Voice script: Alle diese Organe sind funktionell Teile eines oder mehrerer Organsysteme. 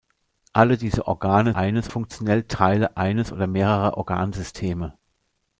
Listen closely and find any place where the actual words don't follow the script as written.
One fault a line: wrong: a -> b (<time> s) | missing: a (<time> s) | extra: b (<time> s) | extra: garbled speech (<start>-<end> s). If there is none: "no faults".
wrong: sind -> eines (1.6 s)